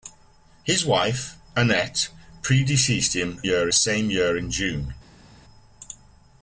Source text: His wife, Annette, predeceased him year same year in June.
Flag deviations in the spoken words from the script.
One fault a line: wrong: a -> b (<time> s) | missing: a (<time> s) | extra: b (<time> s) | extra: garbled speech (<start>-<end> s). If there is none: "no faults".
no faults